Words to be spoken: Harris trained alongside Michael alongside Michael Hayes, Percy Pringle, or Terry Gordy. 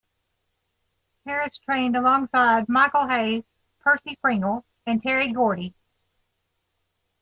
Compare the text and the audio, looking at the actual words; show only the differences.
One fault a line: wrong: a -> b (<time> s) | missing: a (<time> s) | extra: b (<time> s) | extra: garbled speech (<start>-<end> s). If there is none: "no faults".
missing: alongside Michael (3.1 s)
wrong: or -> and (4.9 s)